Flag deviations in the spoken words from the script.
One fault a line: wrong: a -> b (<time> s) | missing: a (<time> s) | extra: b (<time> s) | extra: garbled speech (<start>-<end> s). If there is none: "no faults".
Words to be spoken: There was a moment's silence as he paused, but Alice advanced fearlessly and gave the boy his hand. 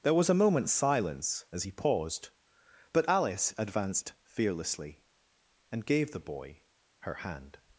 wrong: his -> her (7.0 s)